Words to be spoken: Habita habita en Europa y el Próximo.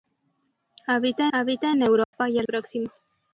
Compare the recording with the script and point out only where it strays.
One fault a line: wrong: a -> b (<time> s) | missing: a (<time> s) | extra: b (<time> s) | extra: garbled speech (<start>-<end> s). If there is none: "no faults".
no faults